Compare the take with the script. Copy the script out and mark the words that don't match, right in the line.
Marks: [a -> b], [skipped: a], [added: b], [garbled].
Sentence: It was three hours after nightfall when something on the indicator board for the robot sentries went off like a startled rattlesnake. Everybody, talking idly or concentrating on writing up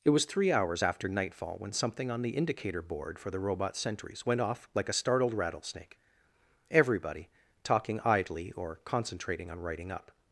It was three hours after nightfall when something on the indicator board for the robot sentries went off like a startled rattlesnake. Everybody, talking idly or concentrating on writing up